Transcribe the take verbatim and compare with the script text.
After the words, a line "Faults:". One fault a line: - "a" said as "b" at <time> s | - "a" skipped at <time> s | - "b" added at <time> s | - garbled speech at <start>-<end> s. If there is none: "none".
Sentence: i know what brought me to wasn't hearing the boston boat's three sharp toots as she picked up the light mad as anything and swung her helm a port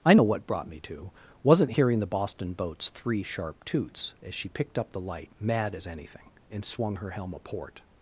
i know what brought me to wasn't hearing the boston boat's three sharp toots as she picked up the light mad as anything and swung her helm a port
Faults:
none